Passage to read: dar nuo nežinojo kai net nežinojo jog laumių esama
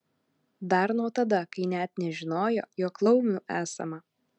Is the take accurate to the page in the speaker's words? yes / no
no